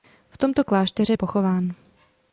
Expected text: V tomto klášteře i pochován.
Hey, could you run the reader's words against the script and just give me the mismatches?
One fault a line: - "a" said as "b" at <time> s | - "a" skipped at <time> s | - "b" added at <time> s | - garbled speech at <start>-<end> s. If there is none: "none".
none